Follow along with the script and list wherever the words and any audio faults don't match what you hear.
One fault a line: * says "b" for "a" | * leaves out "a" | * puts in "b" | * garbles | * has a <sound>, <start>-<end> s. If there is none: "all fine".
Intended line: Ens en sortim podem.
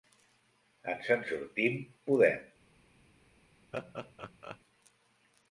* has a laugh, 3.7-4.6 s